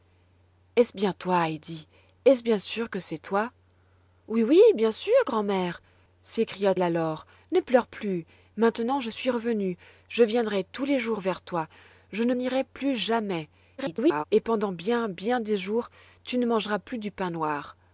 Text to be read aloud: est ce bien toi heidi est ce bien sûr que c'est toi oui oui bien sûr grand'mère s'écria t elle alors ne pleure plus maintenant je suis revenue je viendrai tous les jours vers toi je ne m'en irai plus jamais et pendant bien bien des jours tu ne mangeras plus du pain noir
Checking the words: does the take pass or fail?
fail